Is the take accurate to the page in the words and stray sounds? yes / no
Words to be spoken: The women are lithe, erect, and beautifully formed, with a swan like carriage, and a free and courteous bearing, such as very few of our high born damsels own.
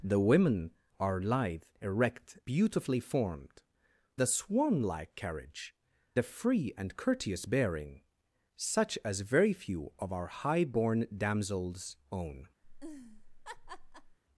no